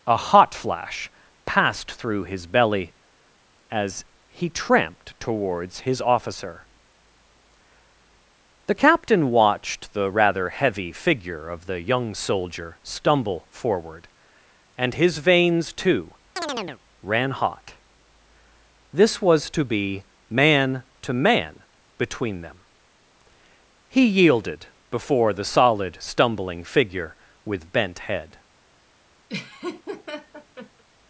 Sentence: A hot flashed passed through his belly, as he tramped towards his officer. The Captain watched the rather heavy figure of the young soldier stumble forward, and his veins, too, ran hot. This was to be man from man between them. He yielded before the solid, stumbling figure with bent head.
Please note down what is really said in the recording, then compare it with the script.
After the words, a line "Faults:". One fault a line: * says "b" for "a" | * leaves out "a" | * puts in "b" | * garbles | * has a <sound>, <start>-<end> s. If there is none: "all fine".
A hot flash passed through his belly, as he tramped towards his officer. The Captain watched the rather heavy figure of the young soldier stumble forward, and his veins, too, ran hot. This was to be man to man between them. He yielded before the solid, stumbling figure with bent head.
Faults:
* says "flash" for "flashed"
* has a chirp, 16.4-16.8 s
* says "to" for "from"
* has a laugh, 29.3-30.8 s